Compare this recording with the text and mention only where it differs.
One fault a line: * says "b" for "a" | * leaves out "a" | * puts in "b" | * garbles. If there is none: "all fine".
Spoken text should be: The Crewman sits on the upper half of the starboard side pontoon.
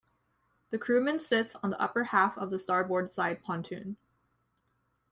all fine